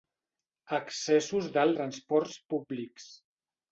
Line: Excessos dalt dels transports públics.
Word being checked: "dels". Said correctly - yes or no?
no